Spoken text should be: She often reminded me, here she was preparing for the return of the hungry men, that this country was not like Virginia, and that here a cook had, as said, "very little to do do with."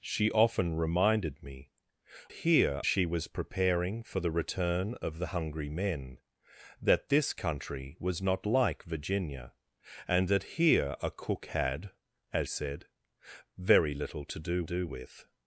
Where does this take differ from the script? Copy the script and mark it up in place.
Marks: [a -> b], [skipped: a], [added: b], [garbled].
She often reminded me, here she was preparing for the return of the hungry men, that this country was not like Virginia, and that here a cook had, as said, "very little to do do with."